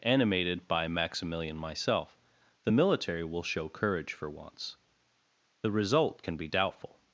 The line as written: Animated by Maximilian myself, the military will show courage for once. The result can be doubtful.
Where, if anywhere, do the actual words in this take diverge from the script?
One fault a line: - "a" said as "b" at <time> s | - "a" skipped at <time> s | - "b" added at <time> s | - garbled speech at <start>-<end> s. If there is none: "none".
none